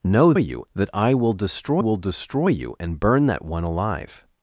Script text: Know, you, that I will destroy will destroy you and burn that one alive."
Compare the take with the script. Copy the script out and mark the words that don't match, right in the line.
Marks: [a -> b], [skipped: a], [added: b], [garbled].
Know, you, that I will destroy will destroy you and burn that one alive."